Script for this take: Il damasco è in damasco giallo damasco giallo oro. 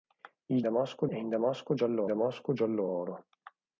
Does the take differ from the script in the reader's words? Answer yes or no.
no